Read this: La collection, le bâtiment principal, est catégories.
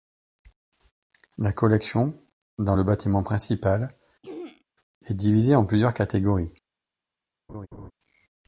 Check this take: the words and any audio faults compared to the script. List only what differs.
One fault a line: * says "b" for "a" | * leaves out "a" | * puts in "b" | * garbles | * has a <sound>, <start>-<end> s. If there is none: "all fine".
* puts in "dans"
* has a throat clearing, 4.2-4.6 s
* puts in "divisée en plusieurs"
* has a laugh, 7.5-7.9 s